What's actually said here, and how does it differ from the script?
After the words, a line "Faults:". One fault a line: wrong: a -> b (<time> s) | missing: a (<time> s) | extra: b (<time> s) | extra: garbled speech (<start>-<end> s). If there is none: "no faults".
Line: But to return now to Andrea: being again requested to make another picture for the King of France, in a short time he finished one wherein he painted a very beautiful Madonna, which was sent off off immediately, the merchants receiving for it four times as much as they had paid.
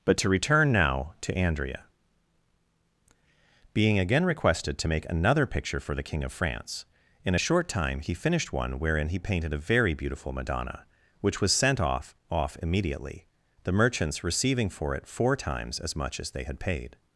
But to return now to Andrea: being again requested to make another picture for the King of France, in a short time he finished one wherein he painted a very beautiful Madonna, which was sent off off immediately, the merchants receiving for it four times as much as they had paid.
Faults:
no faults